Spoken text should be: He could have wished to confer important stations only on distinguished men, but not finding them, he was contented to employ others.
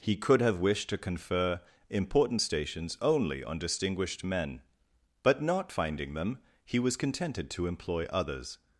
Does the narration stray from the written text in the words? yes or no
no